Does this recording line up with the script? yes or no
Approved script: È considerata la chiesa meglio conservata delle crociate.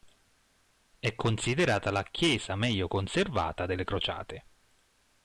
yes